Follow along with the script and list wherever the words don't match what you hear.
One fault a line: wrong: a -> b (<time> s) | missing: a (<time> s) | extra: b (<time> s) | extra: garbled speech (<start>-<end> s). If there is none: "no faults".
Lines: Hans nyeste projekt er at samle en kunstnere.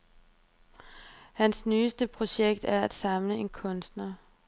no faults